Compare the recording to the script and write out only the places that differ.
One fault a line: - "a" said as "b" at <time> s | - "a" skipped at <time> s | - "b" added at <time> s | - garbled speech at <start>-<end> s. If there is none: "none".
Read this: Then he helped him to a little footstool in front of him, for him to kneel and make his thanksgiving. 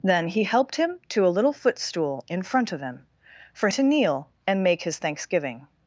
- "him" skipped at 3.7 s